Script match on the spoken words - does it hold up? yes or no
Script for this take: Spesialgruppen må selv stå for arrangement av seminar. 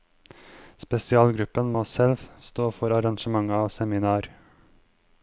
yes